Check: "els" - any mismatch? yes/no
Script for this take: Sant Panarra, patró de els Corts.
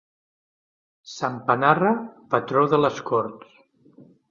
yes